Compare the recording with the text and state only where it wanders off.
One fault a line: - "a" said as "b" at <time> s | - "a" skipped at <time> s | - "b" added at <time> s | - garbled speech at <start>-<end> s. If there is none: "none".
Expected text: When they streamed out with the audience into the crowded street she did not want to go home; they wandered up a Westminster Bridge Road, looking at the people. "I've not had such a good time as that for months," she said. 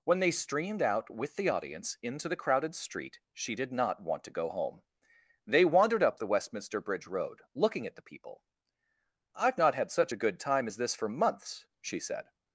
- "a" said as "the" at 6.2 s
- "that" said as "this" at 10.8 s